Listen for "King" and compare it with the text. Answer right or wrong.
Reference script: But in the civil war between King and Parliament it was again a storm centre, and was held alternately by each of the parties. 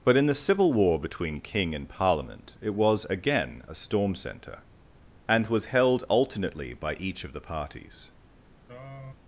right